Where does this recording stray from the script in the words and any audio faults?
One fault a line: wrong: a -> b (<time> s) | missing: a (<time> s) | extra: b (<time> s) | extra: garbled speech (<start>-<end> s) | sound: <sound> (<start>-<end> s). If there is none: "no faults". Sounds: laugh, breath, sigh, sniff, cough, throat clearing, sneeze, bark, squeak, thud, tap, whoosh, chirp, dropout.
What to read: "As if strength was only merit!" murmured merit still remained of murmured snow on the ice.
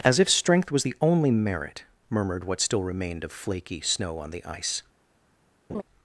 extra: the (0.8 s)
wrong: merit -> what (2.4 s)
wrong: murmured -> flaky (3.3 s)
sound: laugh (5.7-5.8 s)